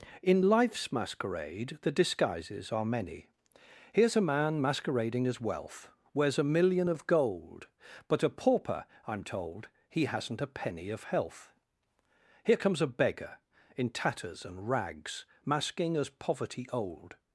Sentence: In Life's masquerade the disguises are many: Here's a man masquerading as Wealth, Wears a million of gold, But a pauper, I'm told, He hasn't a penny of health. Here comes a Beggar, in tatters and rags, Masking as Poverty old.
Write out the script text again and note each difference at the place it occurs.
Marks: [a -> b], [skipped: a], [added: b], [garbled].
In Life's masquerade the disguises are many: Here's a man masquerading as Wealth, Wears a million of gold, But a pauper, I'm told, He hasn't a penny of health. Here comes a Beggar, in tatters and rags, Masking as Poverty old.